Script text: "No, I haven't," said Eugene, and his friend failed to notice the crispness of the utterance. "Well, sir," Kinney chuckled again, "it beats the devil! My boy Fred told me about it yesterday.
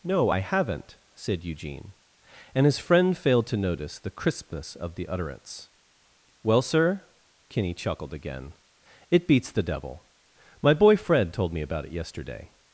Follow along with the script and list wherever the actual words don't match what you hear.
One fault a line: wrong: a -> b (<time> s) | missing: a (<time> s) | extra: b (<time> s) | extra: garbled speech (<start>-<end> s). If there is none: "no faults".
no faults